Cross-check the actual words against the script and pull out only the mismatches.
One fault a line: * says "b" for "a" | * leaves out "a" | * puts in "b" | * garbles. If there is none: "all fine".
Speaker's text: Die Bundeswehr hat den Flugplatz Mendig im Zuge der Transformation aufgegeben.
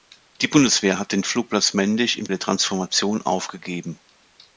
* leaves out "Zuge"